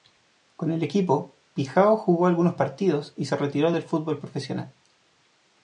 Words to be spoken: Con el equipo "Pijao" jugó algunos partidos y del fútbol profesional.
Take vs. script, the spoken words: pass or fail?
fail